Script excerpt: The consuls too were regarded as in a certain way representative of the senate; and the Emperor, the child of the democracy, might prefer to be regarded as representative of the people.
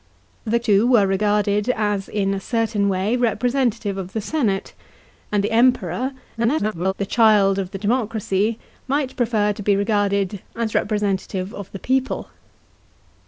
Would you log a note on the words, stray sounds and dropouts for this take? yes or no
yes